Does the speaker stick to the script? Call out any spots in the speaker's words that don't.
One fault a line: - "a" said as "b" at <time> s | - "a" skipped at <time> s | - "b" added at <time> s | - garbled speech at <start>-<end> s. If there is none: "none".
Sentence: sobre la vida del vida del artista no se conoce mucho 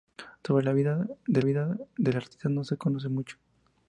none